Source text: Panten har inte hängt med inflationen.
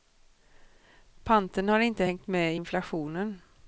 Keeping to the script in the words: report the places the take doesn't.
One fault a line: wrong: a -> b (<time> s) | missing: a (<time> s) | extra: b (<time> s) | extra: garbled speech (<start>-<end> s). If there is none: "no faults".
no faults